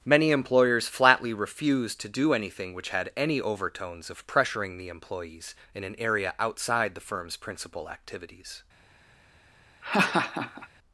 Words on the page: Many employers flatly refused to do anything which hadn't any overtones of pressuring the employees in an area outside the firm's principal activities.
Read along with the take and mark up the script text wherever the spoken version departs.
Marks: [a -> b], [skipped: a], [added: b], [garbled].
Many employers flatly refused to do anything which [hadn't -> had] any overtones of pressuring the employees in an area outside the firm's principal activities.